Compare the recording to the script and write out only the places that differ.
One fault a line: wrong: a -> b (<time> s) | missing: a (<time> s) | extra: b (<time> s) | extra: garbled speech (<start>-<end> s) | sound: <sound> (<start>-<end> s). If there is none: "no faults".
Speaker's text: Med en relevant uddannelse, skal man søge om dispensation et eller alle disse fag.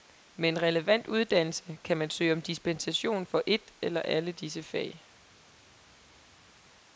wrong: skal -> kan (1.8 s)
extra: for (3.2 s)